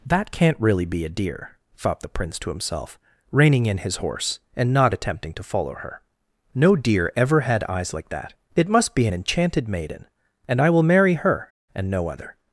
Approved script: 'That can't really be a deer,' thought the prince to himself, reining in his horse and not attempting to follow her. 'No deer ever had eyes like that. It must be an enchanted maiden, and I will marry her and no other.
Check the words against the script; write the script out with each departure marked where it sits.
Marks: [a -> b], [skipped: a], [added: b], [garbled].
'That can't really be a deer,' thought the prince to himself, reining in his horse and not attempting to follow her. 'No deer ever had eyes like that. It must be an enchanted maiden, and I will marry her and no other.